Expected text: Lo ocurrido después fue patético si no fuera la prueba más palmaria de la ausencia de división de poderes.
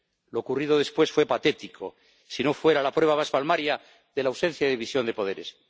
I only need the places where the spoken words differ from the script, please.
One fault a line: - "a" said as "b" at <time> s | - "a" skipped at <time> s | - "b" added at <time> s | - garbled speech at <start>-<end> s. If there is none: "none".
none